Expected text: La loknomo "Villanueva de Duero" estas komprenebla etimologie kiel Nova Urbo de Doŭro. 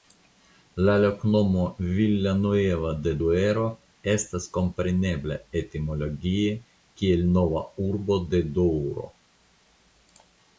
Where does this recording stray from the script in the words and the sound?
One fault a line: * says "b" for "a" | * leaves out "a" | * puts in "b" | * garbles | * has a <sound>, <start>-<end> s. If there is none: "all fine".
all fine